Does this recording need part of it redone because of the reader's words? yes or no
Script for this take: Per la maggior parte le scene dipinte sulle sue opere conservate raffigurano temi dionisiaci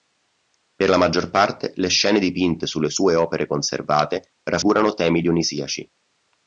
no